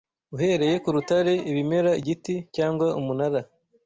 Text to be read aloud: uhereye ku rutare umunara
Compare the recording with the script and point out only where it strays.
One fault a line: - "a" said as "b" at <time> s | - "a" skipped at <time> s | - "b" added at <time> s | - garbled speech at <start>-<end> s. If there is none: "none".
- "ibimera igiti cyangwa" added at 1.5 s